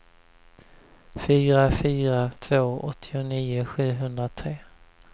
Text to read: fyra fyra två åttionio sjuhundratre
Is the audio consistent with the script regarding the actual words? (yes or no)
yes